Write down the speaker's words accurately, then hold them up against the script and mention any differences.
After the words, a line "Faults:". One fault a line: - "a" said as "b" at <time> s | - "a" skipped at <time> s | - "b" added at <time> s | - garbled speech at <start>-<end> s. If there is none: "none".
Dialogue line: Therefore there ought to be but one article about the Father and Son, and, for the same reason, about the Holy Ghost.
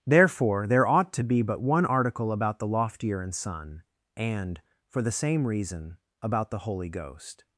Therefore there ought to be but one article about the Loftier and Son, and, for the same reason, about the Holy Ghost.
Faults:
- "Father" said as "Loftier" at 2.7 s